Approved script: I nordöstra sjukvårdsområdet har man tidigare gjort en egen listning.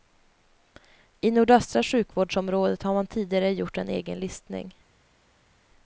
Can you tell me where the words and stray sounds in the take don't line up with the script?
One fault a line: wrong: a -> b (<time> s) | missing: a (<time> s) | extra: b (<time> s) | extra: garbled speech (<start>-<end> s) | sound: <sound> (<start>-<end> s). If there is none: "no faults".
no faults